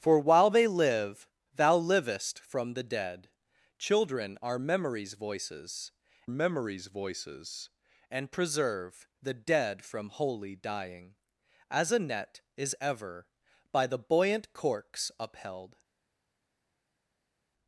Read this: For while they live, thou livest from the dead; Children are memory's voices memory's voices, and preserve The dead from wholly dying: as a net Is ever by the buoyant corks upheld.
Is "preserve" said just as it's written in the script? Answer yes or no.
yes